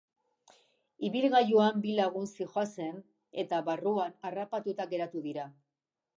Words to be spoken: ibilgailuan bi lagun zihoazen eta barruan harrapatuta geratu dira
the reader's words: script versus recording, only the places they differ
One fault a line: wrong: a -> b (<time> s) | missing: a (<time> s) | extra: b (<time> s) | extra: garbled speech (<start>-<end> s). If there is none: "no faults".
no faults